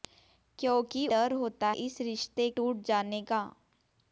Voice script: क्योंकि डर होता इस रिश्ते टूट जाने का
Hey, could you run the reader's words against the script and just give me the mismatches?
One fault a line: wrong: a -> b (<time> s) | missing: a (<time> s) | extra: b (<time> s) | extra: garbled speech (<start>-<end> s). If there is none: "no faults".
no faults